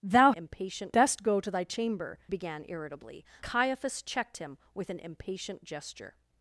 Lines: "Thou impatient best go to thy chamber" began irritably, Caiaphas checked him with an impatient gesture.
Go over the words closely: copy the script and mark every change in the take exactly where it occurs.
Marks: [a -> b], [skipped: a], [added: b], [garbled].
"Thou impatient best go to thy chamber" began irritably, Caiaphas checked him with an impatient gesture.